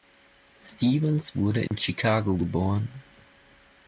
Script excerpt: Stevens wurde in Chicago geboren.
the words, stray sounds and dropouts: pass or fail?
fail